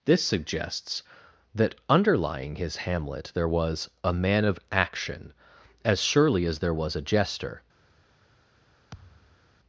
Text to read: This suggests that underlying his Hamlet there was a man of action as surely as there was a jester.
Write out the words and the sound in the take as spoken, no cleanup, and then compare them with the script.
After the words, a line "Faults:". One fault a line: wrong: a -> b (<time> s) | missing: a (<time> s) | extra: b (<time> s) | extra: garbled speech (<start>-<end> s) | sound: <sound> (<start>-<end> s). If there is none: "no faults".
This suggests that underlying his Hamlet there was a man of action as surely as there was a jester.
Faults:
sound: thud (8.9-9.5 s)